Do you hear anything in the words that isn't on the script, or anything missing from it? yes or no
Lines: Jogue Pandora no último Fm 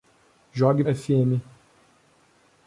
yes